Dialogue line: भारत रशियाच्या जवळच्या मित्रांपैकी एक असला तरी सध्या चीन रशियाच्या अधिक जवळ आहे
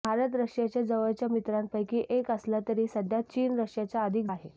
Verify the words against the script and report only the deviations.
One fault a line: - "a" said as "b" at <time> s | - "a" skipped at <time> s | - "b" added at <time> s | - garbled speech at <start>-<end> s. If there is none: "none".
- "जवळ" skipped at 4.2 s